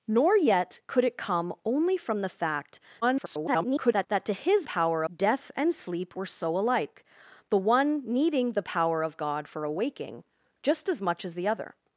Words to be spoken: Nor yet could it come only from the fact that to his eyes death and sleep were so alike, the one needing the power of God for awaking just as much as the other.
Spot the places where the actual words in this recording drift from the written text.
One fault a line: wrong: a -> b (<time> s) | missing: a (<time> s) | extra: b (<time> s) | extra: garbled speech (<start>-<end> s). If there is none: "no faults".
extra: garbled speech (3.0-4.1 s)
wrong: eyes -> power (4.6 s)